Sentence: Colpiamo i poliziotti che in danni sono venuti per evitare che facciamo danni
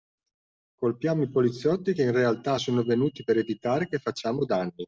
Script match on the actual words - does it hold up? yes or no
no